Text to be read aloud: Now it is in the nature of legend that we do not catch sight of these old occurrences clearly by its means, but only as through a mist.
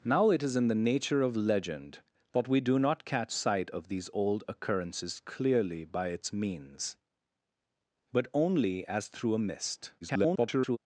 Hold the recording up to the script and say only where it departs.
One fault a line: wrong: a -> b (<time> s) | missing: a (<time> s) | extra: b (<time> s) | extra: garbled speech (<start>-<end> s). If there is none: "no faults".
extra: garbled speech (10.0-10.8 s)